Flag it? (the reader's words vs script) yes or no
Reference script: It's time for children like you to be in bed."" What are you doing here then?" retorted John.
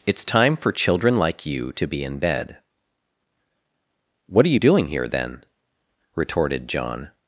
no